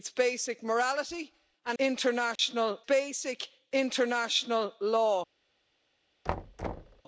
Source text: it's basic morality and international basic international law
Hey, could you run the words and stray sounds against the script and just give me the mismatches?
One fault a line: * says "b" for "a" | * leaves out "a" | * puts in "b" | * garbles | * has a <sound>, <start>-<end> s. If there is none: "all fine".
* has a dropout, 2.4-2.4 s
* has a thud, 6.3-7.0 s